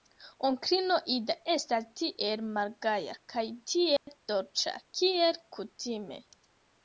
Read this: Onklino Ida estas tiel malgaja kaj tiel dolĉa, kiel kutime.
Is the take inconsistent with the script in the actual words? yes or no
no